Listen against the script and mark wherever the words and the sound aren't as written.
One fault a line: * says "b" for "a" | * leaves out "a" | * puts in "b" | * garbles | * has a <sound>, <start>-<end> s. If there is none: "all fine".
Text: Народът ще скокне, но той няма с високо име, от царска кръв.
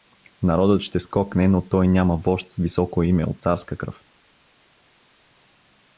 * puts in "вожд"